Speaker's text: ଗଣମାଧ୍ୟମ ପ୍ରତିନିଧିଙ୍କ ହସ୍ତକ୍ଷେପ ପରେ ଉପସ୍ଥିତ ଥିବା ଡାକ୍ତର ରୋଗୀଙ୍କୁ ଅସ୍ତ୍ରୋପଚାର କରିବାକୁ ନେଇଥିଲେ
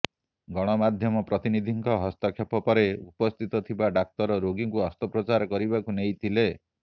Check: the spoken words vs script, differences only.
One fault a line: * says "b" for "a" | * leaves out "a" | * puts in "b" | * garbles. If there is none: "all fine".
all fine